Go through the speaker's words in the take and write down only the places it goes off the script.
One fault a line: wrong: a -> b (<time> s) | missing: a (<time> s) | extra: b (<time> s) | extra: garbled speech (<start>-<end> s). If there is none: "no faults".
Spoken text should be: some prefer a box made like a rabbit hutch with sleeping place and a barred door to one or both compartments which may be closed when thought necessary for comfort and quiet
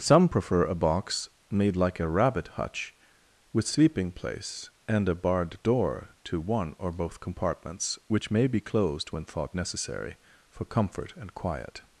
no faults